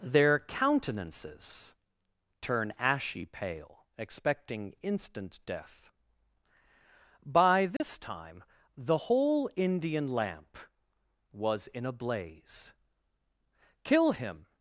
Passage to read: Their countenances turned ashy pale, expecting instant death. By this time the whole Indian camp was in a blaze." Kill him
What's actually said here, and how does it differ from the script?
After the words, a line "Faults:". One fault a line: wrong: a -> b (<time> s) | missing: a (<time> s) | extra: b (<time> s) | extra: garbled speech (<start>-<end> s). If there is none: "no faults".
Their countenances turn ashy pale, expecting instant death. By this time the whole Indian lamp was in a blaze." Kill him
Faults:
wrong: turned -> turn (2.4 s)
wrong: camp -> lamp (10.1 s)